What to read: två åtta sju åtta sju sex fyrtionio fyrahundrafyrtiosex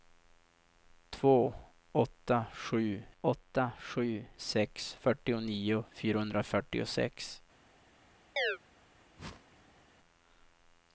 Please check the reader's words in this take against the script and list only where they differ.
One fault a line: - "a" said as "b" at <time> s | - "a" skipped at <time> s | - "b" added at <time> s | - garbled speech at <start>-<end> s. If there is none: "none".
none